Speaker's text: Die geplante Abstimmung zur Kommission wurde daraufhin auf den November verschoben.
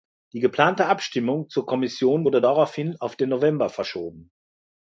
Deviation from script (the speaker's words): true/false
false